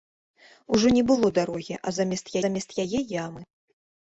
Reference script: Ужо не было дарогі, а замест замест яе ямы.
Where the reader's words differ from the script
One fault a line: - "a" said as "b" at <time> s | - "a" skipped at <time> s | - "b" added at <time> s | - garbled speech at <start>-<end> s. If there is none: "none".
none